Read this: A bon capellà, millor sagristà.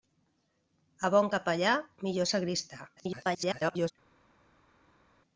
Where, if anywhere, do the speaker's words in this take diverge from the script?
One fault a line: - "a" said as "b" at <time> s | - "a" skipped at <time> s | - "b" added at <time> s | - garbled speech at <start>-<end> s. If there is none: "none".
- garbled speech at 3.0-3.9 s